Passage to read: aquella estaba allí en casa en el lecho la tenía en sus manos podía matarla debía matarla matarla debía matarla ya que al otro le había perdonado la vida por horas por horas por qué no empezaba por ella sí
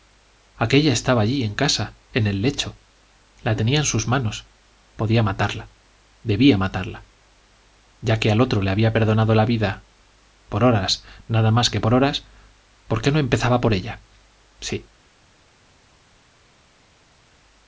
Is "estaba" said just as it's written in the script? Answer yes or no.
yes